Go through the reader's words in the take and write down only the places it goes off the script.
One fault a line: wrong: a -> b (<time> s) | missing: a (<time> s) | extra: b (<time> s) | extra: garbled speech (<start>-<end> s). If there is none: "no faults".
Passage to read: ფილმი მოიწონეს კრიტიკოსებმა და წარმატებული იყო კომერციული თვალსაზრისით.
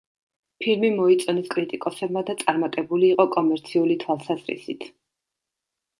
no faults